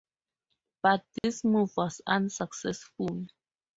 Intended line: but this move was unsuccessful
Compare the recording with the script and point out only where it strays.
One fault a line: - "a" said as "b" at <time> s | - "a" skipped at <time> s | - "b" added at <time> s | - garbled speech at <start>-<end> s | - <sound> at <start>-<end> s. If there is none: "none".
- dropout at 1.2-1.2 s